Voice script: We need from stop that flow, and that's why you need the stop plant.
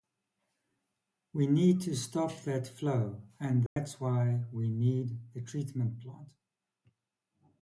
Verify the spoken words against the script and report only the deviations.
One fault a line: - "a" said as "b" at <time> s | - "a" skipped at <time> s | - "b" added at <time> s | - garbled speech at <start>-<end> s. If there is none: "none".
- "from" said as "to" at 1.8 s
- "you" said as "we" at 4.5 s
- "stop" said as "treatment" at 5.4 s